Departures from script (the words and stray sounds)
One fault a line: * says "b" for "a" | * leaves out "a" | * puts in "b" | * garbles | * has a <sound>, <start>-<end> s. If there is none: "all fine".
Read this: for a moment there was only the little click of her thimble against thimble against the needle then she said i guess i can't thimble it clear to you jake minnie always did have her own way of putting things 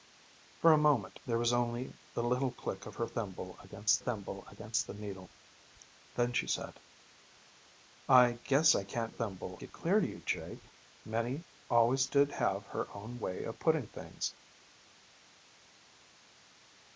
all fine